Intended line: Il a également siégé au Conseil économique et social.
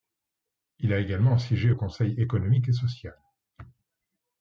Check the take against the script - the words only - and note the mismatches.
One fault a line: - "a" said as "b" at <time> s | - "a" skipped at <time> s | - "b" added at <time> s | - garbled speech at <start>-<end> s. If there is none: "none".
none